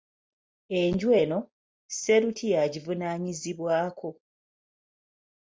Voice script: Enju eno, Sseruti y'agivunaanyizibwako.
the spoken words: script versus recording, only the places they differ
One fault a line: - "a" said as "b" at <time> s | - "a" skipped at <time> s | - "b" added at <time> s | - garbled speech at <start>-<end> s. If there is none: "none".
none